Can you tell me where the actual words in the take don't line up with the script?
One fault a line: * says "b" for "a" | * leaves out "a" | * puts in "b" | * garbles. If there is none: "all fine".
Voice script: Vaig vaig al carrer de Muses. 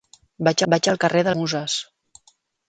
all fine